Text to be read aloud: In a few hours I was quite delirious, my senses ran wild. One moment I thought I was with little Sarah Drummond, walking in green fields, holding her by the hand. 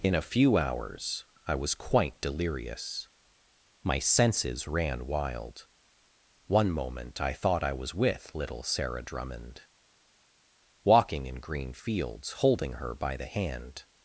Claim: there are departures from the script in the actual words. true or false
false